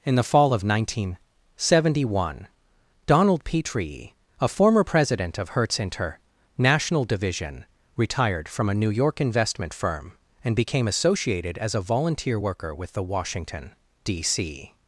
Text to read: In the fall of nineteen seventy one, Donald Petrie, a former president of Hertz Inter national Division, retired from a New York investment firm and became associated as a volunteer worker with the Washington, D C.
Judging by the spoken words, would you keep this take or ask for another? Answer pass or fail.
pass